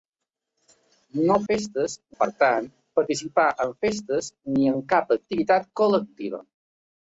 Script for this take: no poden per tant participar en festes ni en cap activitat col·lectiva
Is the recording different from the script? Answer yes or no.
yes